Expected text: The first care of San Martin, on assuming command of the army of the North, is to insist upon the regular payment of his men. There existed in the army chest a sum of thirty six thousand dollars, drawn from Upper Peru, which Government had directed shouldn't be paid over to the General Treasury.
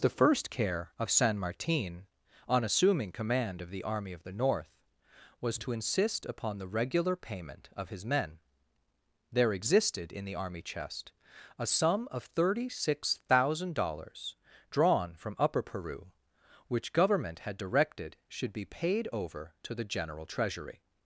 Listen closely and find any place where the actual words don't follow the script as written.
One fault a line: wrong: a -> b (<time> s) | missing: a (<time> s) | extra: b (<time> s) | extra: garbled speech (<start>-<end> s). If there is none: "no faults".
wrong: is -> was (5.4 s)
wrong: shouldn't -> should (18.3 s)